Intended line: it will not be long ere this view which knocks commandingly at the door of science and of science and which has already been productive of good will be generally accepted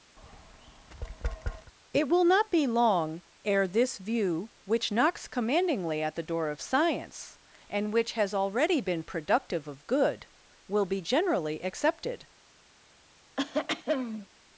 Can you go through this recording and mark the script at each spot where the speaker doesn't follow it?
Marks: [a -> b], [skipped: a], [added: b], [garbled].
it will not be long ere this view which knocks commandingly at the door of science and [skipped: of science and] which has already been productive of good will be generally accepted